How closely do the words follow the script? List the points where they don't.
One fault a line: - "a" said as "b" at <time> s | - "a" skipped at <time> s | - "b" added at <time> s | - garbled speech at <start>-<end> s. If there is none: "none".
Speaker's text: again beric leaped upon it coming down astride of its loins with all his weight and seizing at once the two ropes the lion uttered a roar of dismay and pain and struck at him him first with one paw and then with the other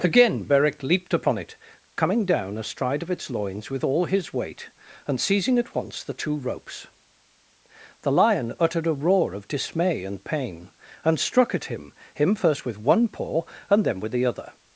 none